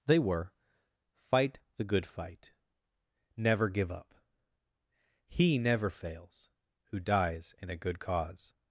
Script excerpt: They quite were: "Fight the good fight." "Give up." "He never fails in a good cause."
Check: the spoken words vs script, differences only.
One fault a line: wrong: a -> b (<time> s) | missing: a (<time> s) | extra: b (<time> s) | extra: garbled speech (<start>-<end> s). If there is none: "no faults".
missing: quite (0.2 s)
extra: Never (3.4 s)
extra: who dies (6.8 s)